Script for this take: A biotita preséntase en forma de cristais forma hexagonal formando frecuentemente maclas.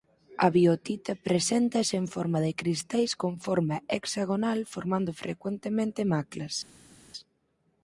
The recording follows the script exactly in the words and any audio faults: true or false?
false